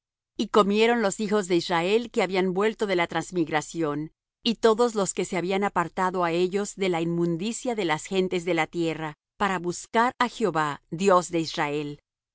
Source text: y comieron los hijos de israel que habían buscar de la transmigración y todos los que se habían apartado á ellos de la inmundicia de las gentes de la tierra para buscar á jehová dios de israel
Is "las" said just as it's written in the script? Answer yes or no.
yes